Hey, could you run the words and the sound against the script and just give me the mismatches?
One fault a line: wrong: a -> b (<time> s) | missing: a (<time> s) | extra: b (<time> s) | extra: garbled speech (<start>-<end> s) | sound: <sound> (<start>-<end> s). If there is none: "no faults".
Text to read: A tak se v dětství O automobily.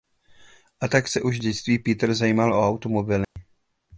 extra: už (1.2 s)
extra: Peter zajímal (1.8 s)
sound: dropout (3.2-3.4 s)